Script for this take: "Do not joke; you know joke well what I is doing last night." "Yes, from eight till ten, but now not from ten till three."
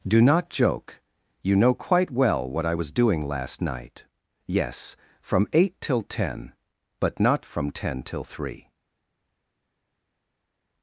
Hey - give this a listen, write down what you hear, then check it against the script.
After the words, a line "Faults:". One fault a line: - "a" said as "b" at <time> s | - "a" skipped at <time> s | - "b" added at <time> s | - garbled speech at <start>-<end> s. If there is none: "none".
"Do not joke; you know quite well what I was doing last night." "Yes, from eight till ten, but not from ten till three."
Faults:
- "joke" said as "quite" at 1.7 s
- "is" said as "was" at 2.7 s
- "now" skipped at 7.2 s